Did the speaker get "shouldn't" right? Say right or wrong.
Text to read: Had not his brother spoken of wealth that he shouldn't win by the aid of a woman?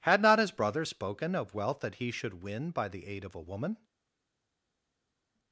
wrong